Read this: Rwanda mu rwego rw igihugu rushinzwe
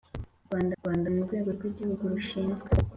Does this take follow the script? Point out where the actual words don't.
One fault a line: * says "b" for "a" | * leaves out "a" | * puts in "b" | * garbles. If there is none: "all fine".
* puts in "rwanda"